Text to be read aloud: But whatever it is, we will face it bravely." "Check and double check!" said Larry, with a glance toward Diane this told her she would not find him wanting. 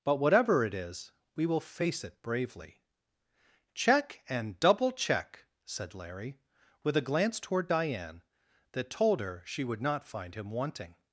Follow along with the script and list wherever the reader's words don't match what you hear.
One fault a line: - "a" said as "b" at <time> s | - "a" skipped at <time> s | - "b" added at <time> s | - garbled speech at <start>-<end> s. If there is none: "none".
- "this" said as "that" at 8.7 s